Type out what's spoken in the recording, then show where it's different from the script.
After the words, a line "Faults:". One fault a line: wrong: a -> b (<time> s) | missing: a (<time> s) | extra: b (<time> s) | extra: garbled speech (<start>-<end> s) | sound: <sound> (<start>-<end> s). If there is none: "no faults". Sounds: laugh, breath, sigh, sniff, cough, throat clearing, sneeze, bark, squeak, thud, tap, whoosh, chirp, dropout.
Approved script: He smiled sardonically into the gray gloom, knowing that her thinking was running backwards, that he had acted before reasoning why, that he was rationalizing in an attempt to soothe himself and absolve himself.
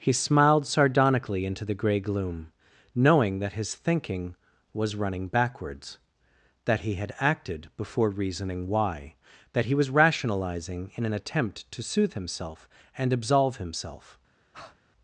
He smiled sardonically into the gray gloom, knowing that his thinking was running backwards, that he had acted before reasoning why, that he was rationalizing in an attempt to soothe himself and absolve himself.
Faults:
wrong: her -> his (3.5 s)
sound: breath (14.5-14.8 s)